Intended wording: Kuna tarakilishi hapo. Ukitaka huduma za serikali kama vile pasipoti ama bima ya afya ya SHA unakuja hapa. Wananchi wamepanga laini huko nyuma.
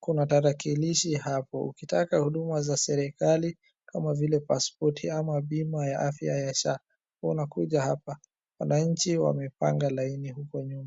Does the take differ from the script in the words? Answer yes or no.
no